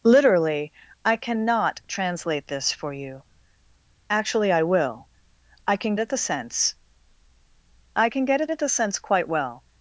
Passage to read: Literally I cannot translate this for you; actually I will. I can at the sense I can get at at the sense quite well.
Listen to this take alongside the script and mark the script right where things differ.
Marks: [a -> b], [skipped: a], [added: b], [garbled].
Literally I cannot translate this for you; actually I will. I can at the sense I can get at at the sense quite well.